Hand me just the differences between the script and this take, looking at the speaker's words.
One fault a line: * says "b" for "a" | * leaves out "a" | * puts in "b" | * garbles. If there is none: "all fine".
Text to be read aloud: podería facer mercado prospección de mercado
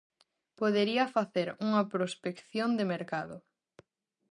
* says "unha" for "mercado"